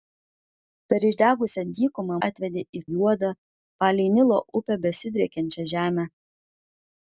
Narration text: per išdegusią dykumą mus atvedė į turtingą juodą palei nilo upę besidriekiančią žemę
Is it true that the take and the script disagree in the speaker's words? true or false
true